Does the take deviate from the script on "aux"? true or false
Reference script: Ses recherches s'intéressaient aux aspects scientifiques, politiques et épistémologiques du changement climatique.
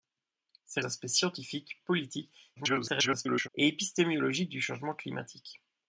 true